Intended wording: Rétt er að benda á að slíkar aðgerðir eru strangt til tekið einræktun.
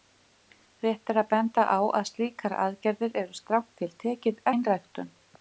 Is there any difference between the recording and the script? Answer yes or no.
no